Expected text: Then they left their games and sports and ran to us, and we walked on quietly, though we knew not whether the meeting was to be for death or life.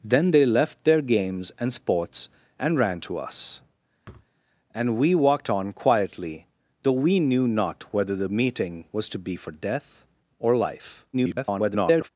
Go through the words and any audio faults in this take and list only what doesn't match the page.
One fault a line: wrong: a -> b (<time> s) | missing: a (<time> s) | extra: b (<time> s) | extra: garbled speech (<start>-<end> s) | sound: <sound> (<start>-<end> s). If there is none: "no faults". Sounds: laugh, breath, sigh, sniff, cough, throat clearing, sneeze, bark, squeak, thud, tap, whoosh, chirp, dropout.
sound: thud (4.0-4.3 s)
extra: garbled speech (11.1-12.1 s)